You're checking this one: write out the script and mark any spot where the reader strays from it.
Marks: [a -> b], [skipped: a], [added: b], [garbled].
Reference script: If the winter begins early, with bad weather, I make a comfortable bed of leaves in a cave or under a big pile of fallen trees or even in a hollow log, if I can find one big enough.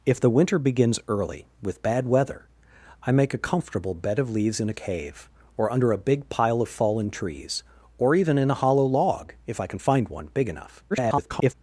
If the winter begins early, with bad weather, I make a comfortable bed of leaves in a cave or under a big pile of fallen trees or even in a hollow log, if I can find one big enough. [garbled]